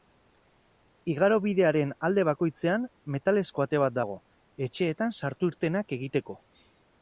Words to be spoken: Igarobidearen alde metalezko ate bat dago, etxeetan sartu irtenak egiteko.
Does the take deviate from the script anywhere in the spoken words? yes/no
yes